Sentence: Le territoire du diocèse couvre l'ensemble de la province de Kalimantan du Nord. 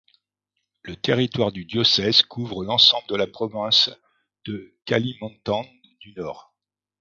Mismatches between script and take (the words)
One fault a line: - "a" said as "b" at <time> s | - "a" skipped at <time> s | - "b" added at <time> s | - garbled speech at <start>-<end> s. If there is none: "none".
none